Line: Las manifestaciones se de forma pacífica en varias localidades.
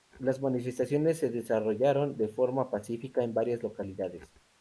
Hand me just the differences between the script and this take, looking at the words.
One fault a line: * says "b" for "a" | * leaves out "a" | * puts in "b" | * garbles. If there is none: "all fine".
* puts in "desarrollaron"